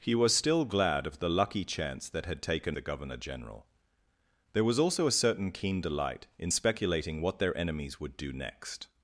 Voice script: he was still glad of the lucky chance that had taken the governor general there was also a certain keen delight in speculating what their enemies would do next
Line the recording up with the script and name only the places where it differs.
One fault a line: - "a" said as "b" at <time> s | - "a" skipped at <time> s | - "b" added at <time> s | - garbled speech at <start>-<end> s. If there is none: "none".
none